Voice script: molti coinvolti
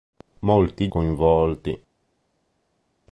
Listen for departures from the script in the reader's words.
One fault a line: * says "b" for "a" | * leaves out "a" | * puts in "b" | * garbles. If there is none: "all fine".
all fine